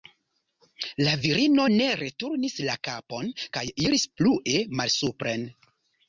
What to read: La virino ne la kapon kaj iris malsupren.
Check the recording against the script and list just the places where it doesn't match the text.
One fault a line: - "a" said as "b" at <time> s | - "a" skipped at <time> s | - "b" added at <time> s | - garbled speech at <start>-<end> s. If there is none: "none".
- "returnis" added at 2.0 s
- "plue" added at 4.2 s